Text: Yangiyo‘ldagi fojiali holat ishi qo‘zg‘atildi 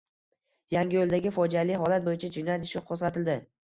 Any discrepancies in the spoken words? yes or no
yes